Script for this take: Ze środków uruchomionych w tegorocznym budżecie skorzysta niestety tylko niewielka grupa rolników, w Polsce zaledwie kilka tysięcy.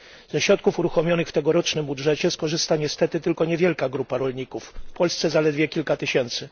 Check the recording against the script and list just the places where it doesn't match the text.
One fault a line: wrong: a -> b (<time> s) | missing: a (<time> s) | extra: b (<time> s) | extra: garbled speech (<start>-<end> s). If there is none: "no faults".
no faults